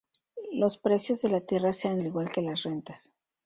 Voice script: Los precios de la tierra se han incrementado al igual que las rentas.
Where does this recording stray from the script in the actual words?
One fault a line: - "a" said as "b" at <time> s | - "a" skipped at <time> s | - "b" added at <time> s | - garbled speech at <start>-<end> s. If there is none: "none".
- "incrementado" skipped at 2.0 s